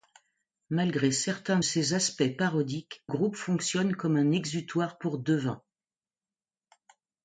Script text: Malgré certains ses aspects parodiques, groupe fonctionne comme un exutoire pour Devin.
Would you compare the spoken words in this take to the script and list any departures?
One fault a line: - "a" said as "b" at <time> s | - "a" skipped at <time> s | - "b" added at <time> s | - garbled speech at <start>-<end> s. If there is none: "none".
none